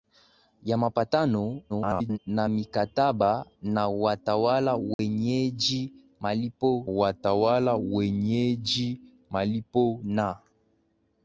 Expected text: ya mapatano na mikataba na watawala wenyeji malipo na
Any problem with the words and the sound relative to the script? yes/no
yes